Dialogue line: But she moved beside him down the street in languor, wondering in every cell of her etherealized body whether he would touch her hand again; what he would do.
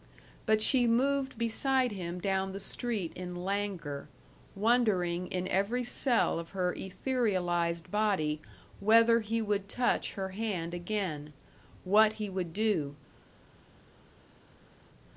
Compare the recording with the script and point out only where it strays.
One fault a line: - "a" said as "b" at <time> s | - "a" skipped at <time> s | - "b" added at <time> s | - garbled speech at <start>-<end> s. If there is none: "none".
none